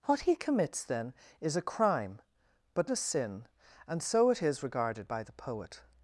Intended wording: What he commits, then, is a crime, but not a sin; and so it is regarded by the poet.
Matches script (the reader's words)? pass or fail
fail